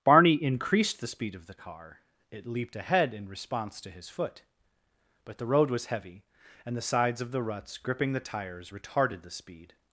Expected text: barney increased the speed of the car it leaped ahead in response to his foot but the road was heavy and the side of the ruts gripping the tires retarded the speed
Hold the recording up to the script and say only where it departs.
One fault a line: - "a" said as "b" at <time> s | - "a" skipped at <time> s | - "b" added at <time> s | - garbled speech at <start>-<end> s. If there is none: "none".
- "side" said as "sides" at 6.8 s